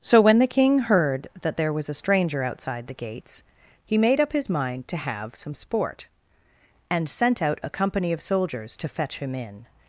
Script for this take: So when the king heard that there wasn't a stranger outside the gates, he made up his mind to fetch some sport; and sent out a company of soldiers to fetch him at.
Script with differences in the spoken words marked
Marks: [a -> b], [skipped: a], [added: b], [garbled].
So when the king heard that there [wasn't -> was] a stranger outside the gates, he made up his mind to [fetch -> have] some sport; and sent out a company of soldiers to fetch him [at. -> in]